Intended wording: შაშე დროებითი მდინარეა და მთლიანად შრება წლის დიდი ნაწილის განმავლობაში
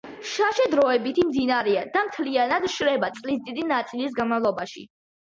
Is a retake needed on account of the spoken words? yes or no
no